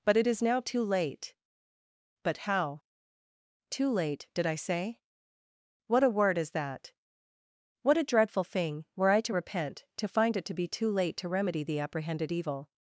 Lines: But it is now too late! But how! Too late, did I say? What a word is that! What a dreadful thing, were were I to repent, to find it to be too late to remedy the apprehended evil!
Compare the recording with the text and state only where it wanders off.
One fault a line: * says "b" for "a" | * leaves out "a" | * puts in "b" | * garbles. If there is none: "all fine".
* leaves out "were"